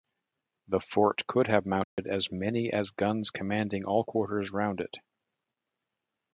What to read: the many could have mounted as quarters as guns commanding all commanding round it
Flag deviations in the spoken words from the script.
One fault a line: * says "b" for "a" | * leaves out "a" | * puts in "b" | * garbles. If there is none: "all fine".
* says "fort" for "many"
* says "many" for "quarters"
* says "quarters" for "commanding"